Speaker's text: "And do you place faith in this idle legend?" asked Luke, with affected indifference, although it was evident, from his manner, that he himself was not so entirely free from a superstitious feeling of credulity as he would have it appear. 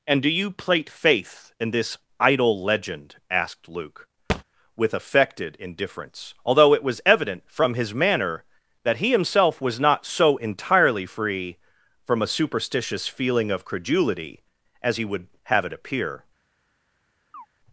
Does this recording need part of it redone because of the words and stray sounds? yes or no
yes